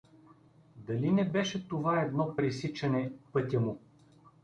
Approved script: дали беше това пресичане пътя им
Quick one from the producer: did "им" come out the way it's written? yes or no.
no